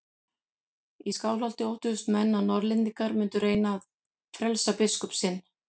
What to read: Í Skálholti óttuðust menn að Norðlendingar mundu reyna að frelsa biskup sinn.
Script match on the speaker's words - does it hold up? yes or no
yes